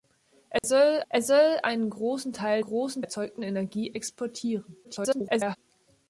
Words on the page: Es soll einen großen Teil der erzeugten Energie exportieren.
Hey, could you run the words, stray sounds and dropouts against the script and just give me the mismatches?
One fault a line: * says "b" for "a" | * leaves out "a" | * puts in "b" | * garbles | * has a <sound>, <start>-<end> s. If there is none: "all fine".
* has a dropout, 0.6-0.6 s
* puts in "es soll"
* says "großen" for "der"
* garbles